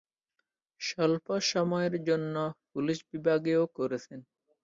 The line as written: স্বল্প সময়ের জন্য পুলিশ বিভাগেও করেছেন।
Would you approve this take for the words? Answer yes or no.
yes